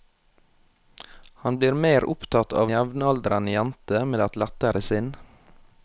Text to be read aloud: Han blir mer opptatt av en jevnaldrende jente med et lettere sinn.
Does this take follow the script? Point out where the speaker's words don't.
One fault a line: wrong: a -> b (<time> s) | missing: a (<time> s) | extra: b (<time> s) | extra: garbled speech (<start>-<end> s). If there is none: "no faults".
missing: en (2.7 s)